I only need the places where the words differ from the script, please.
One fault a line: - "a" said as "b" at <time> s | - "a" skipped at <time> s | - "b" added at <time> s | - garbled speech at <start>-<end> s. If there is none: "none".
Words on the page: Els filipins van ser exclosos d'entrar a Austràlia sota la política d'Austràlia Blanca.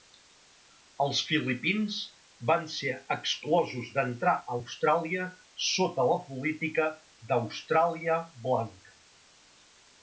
none